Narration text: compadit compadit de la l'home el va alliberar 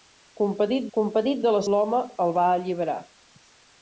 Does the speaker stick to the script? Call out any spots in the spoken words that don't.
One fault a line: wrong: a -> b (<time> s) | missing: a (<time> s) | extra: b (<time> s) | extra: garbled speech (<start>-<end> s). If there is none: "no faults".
no faults